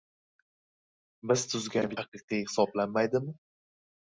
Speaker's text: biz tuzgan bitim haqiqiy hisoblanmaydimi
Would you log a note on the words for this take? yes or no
yes